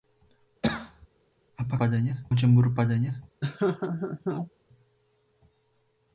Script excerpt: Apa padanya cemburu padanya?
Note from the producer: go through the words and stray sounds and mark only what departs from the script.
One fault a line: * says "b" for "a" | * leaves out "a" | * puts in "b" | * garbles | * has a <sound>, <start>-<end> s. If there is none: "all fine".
* has a cough, 0.6-1.1 s
* has a laugh, 3.4-4.5 s